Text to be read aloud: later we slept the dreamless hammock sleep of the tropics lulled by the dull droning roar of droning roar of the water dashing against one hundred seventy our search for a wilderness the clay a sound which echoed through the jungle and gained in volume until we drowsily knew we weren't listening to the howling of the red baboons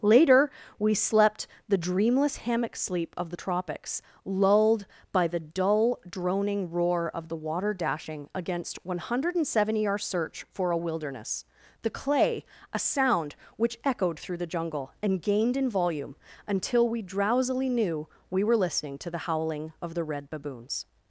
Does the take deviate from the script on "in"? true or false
false